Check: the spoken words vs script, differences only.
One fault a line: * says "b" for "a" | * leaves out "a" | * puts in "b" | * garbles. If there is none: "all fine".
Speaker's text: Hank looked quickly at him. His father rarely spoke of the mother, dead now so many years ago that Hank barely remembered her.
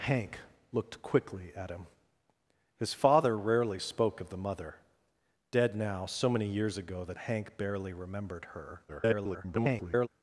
* garbles